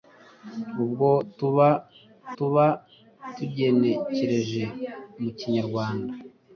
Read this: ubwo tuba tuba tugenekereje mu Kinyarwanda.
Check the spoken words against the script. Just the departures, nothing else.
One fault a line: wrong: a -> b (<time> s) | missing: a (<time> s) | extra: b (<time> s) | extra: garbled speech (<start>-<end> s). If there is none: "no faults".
no faults